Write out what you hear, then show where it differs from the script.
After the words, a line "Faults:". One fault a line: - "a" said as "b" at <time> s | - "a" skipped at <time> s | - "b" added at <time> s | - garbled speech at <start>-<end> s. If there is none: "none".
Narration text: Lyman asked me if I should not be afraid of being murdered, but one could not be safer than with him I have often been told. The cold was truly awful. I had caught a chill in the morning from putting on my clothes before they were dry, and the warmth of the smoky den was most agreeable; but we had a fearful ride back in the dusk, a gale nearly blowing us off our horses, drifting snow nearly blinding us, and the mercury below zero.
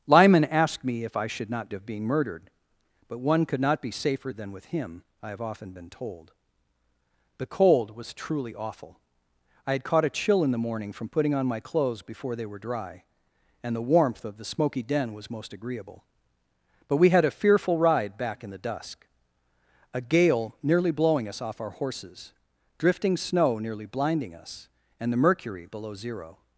Lyman asked me if I should not of being murdered, but one could not be safer than with him I have often been told. The cold was truly awful. I had caught a chill in the morning from putting on my clothes before they were dry, and the warmth of the smoky den was most agreeable; but we had a fearful ride back in the dusk, a gale nearly blowing us off our horses, drifting snow nearly blinding us, and the mercury below zero.
Faults:
- "be afraid" skipped at 1.7 s